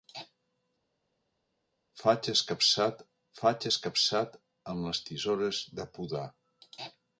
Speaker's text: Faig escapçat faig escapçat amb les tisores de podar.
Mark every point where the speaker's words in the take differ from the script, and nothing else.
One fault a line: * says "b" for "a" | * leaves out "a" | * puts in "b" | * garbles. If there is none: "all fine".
all fine